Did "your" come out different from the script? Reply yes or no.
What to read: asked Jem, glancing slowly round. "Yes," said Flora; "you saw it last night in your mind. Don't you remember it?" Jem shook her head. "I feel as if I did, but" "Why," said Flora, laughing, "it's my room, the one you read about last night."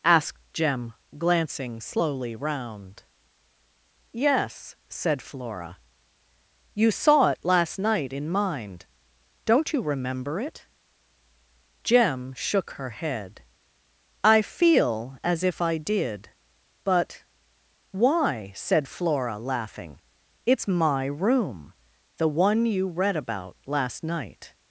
yes